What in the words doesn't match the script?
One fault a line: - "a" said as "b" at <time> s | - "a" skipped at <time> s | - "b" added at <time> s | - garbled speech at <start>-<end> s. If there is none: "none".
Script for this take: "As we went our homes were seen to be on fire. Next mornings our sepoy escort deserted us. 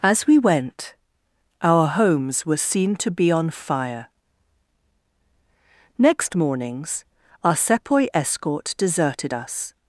none